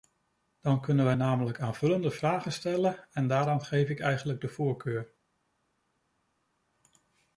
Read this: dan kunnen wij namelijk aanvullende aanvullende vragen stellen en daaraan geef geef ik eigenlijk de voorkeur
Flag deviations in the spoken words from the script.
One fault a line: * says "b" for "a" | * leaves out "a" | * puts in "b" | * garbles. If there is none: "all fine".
* leaves out "aanvullende"
* leaves out "geef"